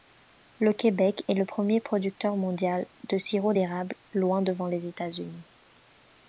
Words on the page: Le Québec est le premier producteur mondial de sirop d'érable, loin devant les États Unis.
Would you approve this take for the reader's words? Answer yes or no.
yes